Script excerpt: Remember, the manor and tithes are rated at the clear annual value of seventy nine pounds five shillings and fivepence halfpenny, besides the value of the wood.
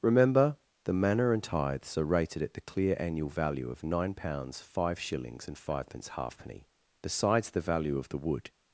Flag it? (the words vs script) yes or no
yes